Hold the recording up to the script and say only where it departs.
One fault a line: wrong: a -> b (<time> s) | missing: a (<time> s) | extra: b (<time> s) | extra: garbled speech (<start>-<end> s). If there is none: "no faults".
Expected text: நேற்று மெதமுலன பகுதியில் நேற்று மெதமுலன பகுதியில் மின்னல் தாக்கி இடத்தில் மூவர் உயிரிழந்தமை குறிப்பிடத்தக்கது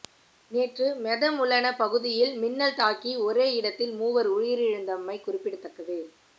missing: நேற்று மெதமுலன பகுதியில் (2.3 s)
extra: ஒரே (3.2 s)